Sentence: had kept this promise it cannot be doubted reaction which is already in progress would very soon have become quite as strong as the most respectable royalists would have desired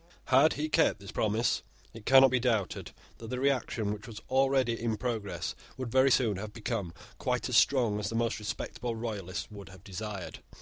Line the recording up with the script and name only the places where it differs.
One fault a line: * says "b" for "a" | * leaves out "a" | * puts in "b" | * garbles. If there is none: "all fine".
* puts in "he"
* puts in "that the"
* says "was" for "is"